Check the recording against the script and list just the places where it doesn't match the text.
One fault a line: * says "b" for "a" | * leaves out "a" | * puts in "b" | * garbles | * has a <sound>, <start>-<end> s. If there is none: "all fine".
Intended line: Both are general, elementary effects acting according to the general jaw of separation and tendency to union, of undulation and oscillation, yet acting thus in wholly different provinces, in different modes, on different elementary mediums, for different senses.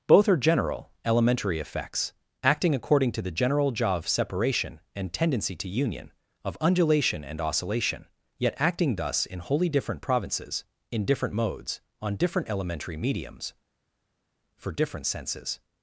all fine